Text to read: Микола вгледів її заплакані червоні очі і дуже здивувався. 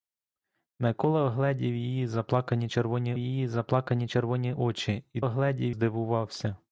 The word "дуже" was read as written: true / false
false